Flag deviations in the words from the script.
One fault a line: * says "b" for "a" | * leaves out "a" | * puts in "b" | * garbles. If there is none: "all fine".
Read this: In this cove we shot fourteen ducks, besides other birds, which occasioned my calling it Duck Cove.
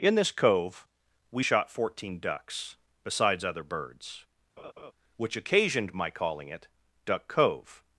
all fine